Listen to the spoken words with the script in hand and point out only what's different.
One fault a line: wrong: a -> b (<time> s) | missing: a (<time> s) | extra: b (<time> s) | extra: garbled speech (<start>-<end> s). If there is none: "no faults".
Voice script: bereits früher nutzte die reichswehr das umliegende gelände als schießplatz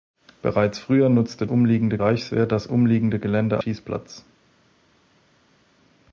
wrong: die -> umliegende (1.4 s)
missing: als (3.6 s)